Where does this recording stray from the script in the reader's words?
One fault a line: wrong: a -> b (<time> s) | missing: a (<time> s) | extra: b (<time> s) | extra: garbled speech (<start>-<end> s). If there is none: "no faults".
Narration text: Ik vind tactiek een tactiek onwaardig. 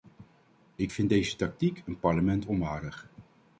extra: deze (1.1 s)
wrong: tactiek -> parlement (2.0 s)